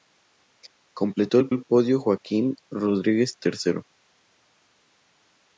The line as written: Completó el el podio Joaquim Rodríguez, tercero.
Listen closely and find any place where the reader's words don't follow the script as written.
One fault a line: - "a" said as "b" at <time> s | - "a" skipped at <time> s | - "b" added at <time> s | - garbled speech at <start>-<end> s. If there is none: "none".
none